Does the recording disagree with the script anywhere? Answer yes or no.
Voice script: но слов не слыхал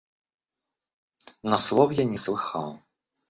yes